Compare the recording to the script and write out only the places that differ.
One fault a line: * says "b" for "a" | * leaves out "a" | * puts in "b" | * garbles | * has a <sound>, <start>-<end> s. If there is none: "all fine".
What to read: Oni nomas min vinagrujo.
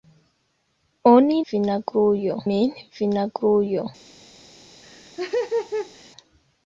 * says "vinagrujo" for "nomas"
* has a laugh, 4.8-6.1 s